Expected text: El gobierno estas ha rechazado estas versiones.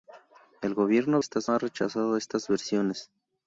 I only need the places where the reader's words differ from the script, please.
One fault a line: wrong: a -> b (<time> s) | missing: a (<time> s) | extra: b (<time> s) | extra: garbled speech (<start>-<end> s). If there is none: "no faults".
no faults